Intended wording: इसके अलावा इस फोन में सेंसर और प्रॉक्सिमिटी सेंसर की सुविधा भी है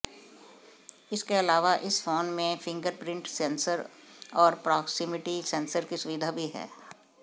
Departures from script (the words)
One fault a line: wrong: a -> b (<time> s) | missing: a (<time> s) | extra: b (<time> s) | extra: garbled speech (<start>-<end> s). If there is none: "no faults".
extra: फिंगरप्रिंट (2.6 s)